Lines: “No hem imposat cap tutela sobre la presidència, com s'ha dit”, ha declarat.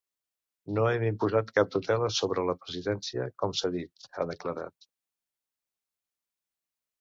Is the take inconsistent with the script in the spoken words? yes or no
no